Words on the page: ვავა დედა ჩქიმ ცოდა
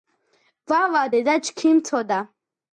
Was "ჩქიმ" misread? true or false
false